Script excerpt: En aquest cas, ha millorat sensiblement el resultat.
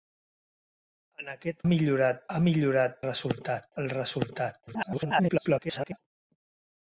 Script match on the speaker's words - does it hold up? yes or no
no